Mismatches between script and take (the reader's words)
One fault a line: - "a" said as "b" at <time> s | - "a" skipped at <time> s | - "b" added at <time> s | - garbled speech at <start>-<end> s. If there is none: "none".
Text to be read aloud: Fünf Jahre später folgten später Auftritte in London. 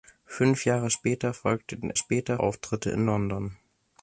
none